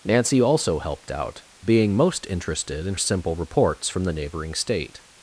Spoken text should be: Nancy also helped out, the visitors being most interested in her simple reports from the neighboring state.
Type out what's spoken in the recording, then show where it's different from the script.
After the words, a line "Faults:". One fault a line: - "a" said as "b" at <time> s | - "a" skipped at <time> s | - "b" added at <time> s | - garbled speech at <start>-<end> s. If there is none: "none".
Nancy also helped out, being most interested in simple reports from the neighboring state.
Faults:
- "the visitors" skipped at 1.4 s
- "her" skipped at 2.9 s